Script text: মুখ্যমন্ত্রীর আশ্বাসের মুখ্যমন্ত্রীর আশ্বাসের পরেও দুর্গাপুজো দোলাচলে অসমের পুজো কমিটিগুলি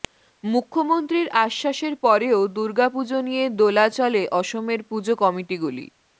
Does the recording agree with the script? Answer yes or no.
no